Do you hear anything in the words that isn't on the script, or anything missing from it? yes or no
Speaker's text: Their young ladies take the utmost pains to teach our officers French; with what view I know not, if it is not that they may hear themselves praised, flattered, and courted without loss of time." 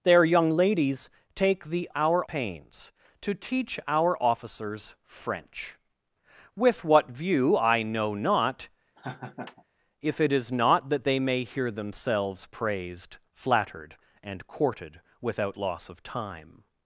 yes